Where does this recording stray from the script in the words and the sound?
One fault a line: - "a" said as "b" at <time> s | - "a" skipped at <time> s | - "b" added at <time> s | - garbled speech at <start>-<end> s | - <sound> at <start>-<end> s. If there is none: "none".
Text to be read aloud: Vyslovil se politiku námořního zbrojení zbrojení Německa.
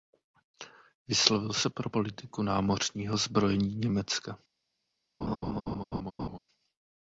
- "pro" added at 1.7 s
- "zbrojení" skipped at 3.8 s
- laugh at 5.2-6.4 s